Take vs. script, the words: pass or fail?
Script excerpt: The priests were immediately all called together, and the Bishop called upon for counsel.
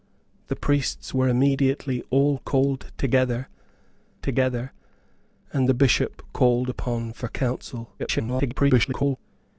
fail